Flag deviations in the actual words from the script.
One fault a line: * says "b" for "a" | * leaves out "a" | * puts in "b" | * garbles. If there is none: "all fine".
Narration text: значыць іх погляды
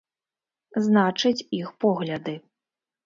all fine